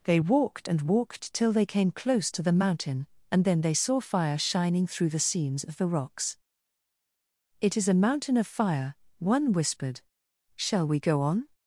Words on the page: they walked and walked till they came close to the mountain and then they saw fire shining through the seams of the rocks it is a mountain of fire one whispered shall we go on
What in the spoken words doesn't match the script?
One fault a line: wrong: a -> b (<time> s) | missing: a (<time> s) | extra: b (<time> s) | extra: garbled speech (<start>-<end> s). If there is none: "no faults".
no faults